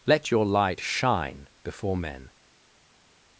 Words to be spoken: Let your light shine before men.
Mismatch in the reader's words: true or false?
false